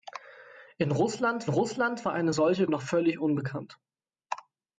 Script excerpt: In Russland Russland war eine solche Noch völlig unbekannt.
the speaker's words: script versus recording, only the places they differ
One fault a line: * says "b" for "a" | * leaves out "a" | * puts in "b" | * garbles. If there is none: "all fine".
all fine